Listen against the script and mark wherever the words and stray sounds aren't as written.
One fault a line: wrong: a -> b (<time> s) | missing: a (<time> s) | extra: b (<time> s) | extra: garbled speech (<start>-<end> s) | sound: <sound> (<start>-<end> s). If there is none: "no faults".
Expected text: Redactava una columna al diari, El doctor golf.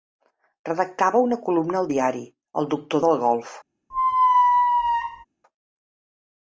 extra: del (3.0 s)
sound: squeak (3.9-5.2 s)